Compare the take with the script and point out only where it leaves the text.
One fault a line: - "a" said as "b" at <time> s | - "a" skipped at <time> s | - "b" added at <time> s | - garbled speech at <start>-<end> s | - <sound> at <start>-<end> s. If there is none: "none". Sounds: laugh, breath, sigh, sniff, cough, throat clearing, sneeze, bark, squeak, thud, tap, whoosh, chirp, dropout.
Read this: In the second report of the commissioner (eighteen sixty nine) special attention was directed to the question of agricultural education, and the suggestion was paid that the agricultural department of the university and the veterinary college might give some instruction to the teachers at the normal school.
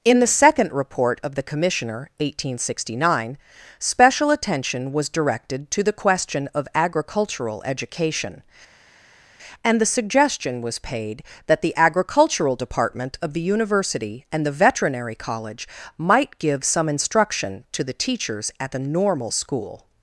none